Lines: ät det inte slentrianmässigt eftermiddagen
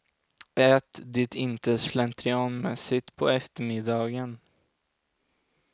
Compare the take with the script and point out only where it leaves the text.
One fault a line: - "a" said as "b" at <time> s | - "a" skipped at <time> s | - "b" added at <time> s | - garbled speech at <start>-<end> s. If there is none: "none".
- "på" added at 3.2 s